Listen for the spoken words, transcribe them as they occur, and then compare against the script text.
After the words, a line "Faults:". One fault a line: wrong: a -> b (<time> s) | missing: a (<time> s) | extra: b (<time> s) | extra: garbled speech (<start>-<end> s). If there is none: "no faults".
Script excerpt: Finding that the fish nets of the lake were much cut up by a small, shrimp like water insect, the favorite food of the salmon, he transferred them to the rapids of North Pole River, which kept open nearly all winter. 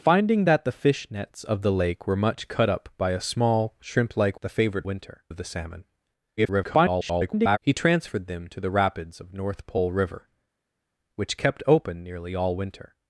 Finding that the fish nets of the lake were much cut up by a small, shrimp like the favorite winter of the salmon, [garbled] he transferred them to the rapids of North Pole River, which kept open nearly all winter.
Faults:
missing: water insect (4.4 s)
wrong: food -> winter (4.8 s)
extra: garbled speech (6.4-7.6 s)